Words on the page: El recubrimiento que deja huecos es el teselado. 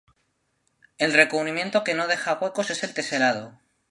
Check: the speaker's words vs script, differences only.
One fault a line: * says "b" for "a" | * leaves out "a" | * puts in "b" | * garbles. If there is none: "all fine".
* puts in "no"